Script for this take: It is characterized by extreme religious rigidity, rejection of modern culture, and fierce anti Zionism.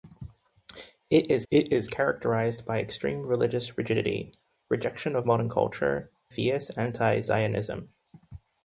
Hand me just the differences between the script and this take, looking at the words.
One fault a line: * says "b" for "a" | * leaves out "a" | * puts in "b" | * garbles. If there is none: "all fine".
* puts in "it is"
* leaves out "and"